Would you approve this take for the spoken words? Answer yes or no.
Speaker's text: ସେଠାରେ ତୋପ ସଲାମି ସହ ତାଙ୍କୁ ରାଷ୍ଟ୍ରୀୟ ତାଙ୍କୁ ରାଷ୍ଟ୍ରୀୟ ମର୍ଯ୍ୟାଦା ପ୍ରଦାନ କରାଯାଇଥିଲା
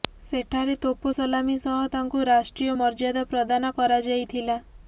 no